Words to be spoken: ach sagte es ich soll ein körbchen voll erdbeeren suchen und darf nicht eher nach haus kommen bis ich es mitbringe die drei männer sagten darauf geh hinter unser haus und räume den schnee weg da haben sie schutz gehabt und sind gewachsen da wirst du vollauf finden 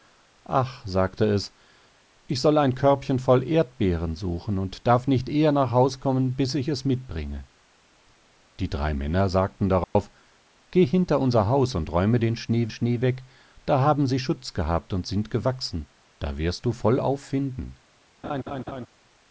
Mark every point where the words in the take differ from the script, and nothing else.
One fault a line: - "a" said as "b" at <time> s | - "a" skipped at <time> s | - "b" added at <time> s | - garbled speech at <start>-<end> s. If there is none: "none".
- "schnee" added at 12.7 s